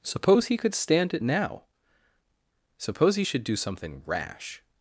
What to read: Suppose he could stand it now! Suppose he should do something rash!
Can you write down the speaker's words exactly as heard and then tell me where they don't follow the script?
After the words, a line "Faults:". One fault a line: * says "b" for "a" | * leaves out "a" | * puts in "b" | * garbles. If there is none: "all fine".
Suppose he could stand it now! Suppose he should do something rash!
Faults:
all fine